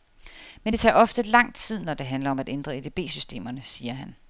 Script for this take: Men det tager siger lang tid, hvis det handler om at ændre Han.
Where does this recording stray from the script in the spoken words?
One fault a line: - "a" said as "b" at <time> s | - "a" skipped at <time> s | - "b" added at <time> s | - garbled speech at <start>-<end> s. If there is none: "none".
- "siger" said as "ofte" at 0.9 s
- "hvis" said as "når" at 1.8 s
- "EDB systemerne siger" added at 2.8 s